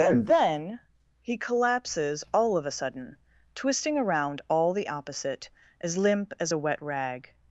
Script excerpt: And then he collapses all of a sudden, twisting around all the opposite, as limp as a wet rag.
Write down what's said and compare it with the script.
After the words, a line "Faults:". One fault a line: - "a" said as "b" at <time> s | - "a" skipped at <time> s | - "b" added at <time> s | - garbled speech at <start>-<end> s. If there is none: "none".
And then he collapses all of a sudden, twisting around all the opposite, as limp as a wet rag.
Faults:
none